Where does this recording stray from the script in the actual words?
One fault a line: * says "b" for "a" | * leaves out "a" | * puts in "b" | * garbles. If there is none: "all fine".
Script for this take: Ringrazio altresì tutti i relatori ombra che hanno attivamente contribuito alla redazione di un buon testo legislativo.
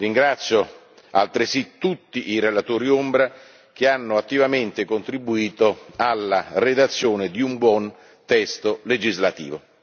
all fine